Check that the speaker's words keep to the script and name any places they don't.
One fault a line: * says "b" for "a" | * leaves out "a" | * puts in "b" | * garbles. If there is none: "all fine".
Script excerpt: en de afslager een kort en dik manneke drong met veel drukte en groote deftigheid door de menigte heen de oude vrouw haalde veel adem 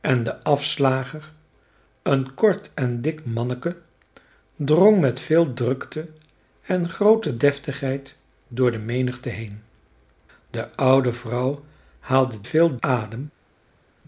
all fine